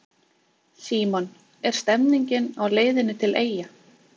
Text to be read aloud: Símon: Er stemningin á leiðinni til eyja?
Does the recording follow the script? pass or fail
pass